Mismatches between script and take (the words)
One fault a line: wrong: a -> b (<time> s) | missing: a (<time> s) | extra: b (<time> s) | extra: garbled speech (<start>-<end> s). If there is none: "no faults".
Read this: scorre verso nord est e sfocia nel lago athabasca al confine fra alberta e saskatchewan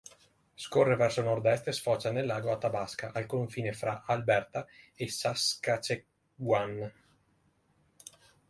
no faults